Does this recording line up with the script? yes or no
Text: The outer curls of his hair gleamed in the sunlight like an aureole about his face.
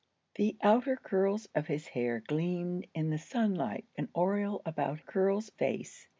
no